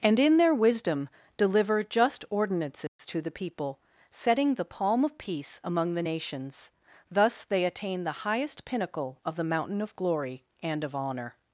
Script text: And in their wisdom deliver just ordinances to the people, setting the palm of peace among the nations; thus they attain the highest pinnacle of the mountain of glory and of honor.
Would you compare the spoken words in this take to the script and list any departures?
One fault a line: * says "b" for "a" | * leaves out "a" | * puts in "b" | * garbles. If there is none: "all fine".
all fine